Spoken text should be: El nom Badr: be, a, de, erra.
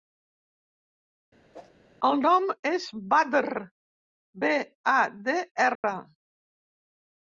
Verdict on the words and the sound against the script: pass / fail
fail